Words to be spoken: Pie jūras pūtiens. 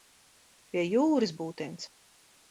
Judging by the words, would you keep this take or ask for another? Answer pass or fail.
pass